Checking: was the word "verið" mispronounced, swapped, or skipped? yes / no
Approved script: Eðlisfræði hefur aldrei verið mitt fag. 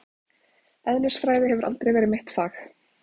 no